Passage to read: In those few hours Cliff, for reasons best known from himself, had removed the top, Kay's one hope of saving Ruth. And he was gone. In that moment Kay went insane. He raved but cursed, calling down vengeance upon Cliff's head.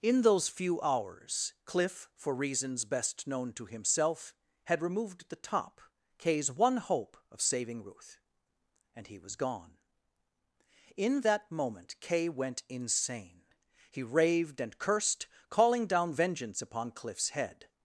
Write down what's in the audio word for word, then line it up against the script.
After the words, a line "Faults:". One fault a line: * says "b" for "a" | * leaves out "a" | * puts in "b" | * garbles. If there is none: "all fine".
In those few hours Cliff, for reasons best known to himself, had removed the top, Kay's one hope of saving Ruth. And he was gone. In that moment Kay went insane. He raved and cursed, calling down vengeance upon Cliff's head.
Faults:
* says "to" for "from"
* says "and" for "but"